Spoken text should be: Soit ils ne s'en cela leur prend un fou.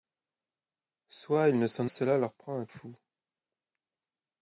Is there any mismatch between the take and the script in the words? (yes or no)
no